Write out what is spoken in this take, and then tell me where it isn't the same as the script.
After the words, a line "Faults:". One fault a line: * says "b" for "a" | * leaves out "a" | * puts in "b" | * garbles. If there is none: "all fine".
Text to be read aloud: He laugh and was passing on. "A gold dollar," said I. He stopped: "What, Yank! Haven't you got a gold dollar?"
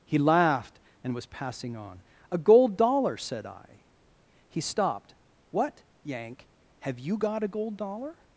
He laughed and was passing on. "A gold dollar," said I. He stopped: "What, Yank! Have you got a gold dollar?"
Faults:
* says "laughed" for "laugh"
* says "Have" for "Haven't"